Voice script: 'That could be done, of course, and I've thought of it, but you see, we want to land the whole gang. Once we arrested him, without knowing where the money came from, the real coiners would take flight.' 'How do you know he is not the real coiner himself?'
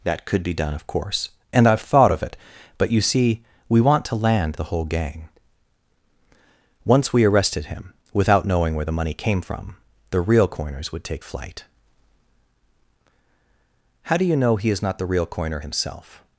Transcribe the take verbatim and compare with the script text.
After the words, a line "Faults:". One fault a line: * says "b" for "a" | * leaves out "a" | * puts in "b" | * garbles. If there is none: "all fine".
'That could be done, of course, and I've thought of it, but you see, we want to land the whole gang. Once we arrested him, without knowing where the money came from, the real coiners would take flight.' 'How do you know he is not the real coiner himself?'
Faults:
all fine